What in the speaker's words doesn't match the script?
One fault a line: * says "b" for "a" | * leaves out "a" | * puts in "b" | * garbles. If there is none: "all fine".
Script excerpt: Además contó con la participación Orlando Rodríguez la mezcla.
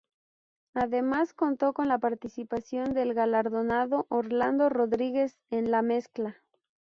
* puts in "del galardonado"
* puts in "en"